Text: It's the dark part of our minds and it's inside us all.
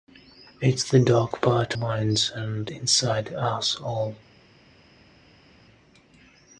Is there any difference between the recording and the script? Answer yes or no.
yes